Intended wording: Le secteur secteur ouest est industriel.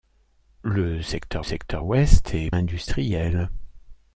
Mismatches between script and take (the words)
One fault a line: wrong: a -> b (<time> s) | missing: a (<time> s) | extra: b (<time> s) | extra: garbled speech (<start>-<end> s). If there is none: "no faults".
no faults